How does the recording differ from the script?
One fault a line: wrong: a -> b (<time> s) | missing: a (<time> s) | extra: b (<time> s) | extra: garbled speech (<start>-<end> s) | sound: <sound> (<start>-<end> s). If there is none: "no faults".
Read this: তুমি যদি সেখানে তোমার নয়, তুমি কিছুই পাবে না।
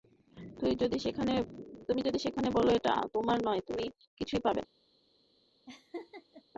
extra: বলো এটা (2.5 s)
sound: laugh (5.7-6.4 s)